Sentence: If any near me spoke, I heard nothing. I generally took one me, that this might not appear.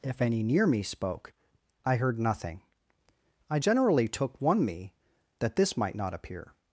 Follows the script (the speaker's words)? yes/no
yes